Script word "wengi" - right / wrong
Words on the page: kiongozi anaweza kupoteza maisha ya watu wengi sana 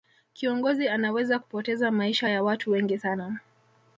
right